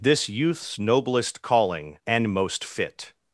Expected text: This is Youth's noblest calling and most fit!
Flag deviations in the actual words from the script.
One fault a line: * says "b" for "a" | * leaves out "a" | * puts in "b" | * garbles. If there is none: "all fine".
* leaves out "is"